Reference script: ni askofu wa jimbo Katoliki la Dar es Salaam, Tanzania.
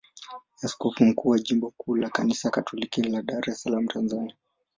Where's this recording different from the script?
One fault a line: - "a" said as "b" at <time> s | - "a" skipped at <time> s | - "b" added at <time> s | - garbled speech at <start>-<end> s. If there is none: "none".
- "mkuu" added at 1.1 s
- "kuu la Kanisa" added at 1.8 s